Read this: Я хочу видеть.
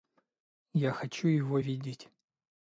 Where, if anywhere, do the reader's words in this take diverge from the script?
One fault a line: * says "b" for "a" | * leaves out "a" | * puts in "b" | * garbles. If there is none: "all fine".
* puts in "его"